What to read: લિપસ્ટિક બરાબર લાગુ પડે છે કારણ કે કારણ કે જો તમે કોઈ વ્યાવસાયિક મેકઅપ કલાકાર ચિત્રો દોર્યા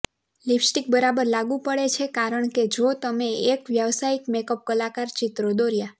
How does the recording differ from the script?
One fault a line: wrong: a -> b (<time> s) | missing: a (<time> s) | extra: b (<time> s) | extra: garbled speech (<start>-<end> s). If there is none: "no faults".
missing: કારણ કે (2.6 s)
wrong: કોઈ -> એક (3.5 s)